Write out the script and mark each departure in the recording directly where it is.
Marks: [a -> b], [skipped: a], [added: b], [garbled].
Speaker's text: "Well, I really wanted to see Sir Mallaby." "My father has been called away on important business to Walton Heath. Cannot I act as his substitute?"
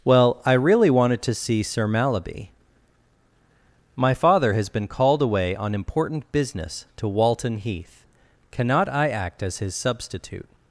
"Well, I really wanted to see Sir Mallaby." "My father has been called away on important business to Walton Heath. Cannot I act as his substitute?"